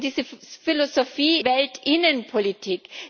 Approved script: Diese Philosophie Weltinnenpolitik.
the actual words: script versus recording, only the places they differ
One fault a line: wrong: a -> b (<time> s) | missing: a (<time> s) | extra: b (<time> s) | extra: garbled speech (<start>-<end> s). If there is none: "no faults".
no faults